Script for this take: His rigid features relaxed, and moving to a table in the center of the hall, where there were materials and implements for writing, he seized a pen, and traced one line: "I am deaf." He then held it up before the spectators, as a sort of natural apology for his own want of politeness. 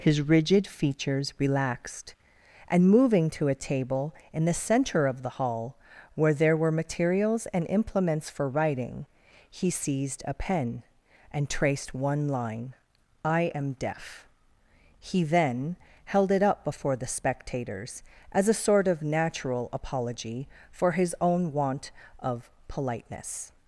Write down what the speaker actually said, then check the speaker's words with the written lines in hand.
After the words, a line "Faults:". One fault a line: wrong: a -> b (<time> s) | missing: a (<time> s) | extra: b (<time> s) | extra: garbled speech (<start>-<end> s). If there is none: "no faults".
His rigid features relaxed, and moving to a table in the center of the hall, where there were materials and implements for writing, he seized a pen, and traced one line: "I am deaf." He then held it up before the spectators, as a sort of natural apology for his own want of politeness.
Faults:
no faults